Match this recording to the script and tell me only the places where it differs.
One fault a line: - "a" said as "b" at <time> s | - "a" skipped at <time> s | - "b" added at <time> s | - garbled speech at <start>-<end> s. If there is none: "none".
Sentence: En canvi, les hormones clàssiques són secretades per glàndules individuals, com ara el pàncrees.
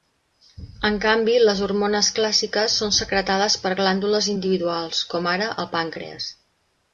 none